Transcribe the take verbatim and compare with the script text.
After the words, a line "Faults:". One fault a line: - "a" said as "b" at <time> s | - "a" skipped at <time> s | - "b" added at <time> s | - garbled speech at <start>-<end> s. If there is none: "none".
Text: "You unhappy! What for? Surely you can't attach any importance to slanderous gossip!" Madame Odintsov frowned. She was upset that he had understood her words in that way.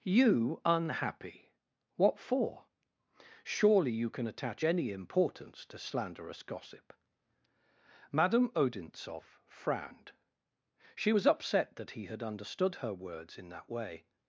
"You unhappy! What for? Surely you can attach any importance to slanderous gossip!" Madame Odintsov frowned. She was upset that he had understood her words in that way.
Faults:
- "can't" said as "can" at 4.1 s